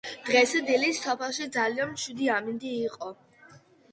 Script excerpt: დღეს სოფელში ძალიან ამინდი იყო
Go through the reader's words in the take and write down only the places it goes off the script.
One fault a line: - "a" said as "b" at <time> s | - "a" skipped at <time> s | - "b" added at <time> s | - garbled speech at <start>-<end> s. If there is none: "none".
- "დილით" added at 0.7 s
- "მშვიდი" added at 1.9 s